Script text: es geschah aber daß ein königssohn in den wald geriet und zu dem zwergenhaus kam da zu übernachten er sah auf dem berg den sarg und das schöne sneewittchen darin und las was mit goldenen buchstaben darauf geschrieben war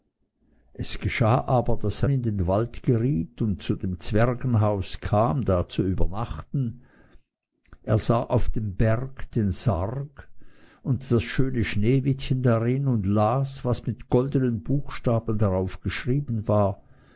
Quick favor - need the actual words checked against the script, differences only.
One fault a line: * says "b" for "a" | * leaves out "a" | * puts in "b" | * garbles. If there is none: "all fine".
* leaves out "ein königssohn"